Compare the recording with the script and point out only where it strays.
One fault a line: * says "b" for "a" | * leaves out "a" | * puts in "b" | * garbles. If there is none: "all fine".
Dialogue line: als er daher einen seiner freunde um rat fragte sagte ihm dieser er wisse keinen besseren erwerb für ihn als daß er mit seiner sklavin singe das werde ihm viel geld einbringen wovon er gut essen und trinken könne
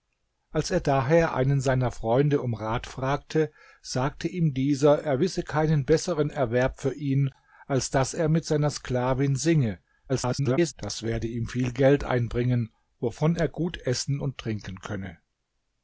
* garbles